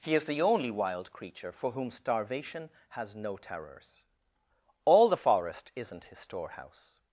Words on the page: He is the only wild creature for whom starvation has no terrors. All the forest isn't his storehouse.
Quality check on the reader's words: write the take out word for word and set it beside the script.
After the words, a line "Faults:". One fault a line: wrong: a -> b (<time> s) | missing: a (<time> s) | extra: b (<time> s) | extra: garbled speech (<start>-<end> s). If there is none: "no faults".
He is the only wild creature for whom starvation has no terrors. All the forest isn't his storehouse.
Faults:
no faults